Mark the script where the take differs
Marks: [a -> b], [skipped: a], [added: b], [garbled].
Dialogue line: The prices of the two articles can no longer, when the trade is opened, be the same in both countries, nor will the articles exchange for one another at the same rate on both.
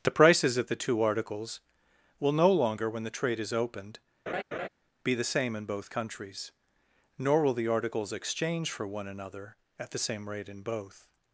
The prices of the two articles [can -> will] no longer, when the trade is opened, be the same in both countries, nor will the articles exchange for one another at the same rate [on -> in] both.